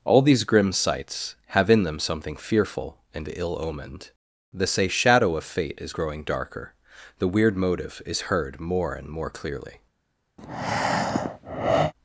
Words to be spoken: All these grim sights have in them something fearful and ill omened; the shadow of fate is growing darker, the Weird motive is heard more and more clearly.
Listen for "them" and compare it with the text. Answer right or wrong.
right